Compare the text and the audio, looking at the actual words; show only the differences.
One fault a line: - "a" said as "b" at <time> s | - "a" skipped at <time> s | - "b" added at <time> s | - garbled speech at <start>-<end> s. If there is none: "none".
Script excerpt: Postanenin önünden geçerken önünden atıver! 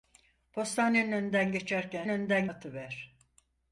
none